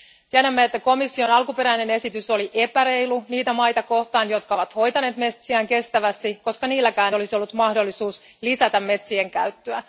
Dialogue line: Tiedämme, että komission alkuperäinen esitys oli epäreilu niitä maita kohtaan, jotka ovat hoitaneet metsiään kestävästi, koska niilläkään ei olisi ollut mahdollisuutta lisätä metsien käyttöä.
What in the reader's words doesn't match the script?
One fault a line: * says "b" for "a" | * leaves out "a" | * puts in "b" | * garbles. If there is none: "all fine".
* leaves out "ei"